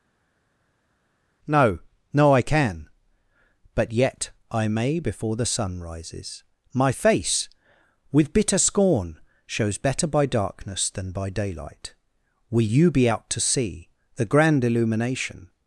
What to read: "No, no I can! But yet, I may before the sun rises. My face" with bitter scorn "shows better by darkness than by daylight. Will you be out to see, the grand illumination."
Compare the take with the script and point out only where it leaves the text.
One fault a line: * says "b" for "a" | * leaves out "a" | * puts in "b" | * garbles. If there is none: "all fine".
all fine